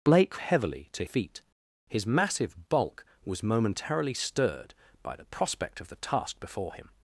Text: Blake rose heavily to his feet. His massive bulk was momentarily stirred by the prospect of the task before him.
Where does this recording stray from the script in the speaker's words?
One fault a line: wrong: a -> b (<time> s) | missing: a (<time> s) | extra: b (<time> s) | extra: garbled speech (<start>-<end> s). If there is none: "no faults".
missing: rose (0.4 s)
missing: his (1.0 s)